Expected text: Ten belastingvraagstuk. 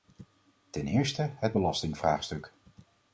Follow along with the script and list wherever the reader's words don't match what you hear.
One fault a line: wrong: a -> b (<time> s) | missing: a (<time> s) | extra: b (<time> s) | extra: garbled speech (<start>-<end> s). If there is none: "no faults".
extra: eerste het (0.9 s)